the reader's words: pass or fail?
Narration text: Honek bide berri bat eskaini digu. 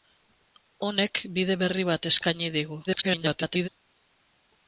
fail